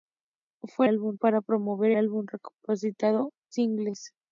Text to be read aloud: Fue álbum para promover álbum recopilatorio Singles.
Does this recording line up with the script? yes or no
yes